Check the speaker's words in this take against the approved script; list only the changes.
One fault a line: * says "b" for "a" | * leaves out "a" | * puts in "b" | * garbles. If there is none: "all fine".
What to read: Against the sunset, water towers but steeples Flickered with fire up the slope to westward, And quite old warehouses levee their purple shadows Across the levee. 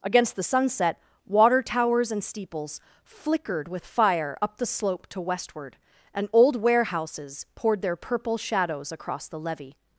* says "and" for "but"
* leaves out "quite"
* says "poured" for "levee"